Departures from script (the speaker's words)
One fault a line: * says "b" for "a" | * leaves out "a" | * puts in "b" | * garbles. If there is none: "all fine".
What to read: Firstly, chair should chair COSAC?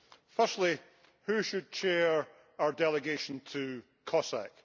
* says "who" for "chair"
* puts in "our delegation to"